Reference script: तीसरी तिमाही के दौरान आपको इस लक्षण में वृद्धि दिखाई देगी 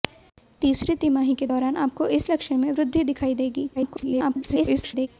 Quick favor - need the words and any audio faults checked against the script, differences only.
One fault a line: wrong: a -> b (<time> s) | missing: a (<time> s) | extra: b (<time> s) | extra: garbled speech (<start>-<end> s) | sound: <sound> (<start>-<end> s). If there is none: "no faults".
extra: garbled speech (3.8-5.1 s)